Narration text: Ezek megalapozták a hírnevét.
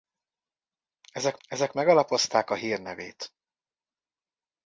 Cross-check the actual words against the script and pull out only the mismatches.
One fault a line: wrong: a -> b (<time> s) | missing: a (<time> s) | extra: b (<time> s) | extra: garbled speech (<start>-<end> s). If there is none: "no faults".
extra: ezek (1.5 s)